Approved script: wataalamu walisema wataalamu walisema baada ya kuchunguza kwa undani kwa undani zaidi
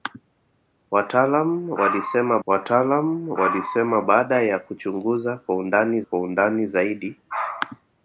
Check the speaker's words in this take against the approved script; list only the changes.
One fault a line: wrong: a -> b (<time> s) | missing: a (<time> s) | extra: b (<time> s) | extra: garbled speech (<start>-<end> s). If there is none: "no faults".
no faults